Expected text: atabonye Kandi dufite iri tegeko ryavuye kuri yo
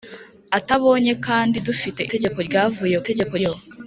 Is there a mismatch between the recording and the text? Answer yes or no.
yes